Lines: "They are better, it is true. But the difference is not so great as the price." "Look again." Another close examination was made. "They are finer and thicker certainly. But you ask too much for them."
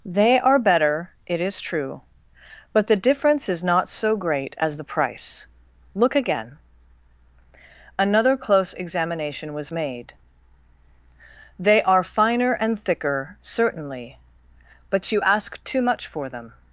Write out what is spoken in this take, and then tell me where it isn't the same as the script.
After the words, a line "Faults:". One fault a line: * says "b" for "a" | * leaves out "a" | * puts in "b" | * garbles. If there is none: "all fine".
"They are better, it is true. But the difference is not so great as the price." "Look again." Another close examination was made. "They are finer and thicker certainly. But you ask too much for them."
Faults:
all fine